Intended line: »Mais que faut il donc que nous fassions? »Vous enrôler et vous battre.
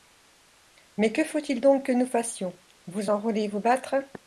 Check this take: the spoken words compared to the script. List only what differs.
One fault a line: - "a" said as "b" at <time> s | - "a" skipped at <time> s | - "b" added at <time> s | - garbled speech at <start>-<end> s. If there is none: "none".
none